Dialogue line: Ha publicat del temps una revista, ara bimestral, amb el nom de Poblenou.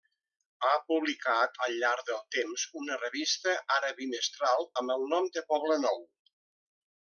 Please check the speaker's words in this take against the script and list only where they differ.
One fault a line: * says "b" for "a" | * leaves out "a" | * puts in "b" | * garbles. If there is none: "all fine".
* puts in "al llarg"